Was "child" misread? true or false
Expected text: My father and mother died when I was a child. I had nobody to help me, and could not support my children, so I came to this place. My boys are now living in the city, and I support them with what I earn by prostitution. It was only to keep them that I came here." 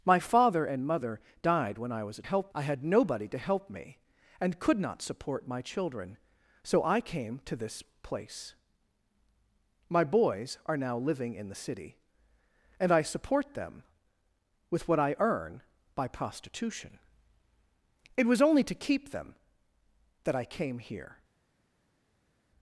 true